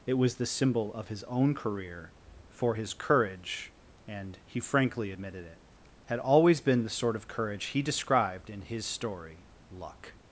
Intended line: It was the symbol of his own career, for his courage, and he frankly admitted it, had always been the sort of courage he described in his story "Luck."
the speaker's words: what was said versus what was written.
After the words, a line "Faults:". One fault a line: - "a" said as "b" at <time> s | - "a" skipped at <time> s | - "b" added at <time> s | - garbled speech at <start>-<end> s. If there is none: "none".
It was the symbol of his own career, for his courage, and he frankly admitted it, had always been the sort of courage he described in his story "Luck."
Faults:
none